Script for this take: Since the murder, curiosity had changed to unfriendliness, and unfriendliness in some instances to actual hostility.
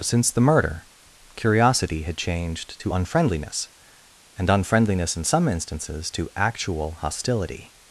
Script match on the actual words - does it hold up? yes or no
yes